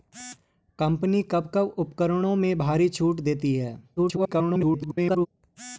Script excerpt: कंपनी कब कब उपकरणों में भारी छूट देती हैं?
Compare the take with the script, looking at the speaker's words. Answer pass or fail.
fail